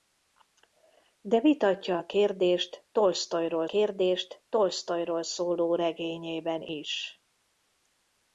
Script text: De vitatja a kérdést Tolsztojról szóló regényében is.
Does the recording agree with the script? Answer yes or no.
no